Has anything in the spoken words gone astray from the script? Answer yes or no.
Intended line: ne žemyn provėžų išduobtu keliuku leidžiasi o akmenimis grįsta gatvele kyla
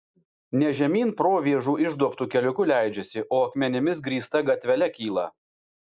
no